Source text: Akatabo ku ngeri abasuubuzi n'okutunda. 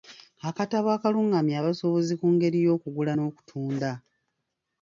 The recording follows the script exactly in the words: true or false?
false